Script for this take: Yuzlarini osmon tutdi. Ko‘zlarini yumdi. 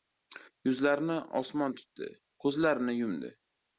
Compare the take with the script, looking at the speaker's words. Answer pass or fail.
pass